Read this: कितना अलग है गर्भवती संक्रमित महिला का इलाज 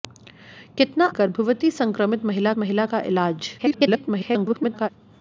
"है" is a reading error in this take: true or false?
true